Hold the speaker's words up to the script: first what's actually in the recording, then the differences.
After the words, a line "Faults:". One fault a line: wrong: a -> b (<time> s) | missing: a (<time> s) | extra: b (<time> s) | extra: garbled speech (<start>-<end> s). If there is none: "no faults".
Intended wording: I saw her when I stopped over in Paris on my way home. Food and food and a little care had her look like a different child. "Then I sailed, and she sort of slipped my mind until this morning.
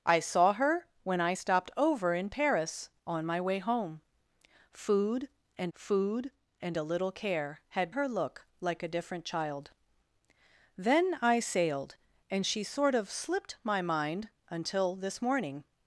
I saw her when I stopped over in Paris on my way home. Food and food and a little care had her look like a different child. "Then I sailed, and she sort of slipped my mind until this morning.
Faults:
no faults